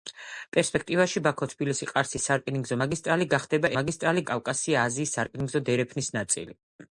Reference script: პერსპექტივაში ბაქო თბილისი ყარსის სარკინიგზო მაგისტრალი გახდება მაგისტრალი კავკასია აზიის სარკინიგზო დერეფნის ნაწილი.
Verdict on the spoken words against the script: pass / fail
pass